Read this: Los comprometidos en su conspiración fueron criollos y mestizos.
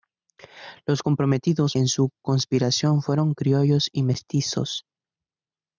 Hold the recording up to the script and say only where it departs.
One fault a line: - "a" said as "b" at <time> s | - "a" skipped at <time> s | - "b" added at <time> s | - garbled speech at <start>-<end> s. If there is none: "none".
none